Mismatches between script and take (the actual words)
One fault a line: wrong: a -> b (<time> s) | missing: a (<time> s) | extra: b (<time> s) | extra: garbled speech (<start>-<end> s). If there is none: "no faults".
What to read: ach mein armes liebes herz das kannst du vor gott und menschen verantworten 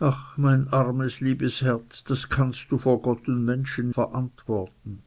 no faults